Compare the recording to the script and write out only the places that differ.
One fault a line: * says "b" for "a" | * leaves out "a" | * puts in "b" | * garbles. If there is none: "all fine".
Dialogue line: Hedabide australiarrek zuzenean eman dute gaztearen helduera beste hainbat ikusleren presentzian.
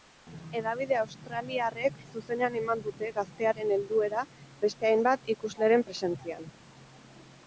all fine